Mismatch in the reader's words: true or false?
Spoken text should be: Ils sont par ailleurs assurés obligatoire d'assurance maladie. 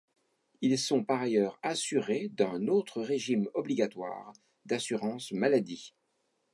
true